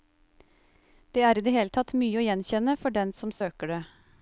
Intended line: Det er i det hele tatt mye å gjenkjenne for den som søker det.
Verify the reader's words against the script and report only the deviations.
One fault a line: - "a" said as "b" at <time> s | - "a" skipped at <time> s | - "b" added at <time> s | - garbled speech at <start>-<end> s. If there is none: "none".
none